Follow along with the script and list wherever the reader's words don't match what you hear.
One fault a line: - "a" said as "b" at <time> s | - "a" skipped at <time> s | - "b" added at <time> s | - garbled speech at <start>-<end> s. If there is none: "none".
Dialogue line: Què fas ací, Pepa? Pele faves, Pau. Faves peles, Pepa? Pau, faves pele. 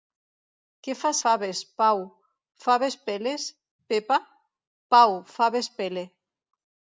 - "ací Pepa Pele" skipped at 1.2 s